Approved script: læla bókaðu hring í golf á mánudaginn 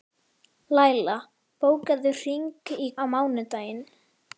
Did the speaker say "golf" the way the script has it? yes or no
no